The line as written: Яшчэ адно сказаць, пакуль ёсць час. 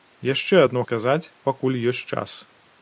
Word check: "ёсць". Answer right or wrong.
right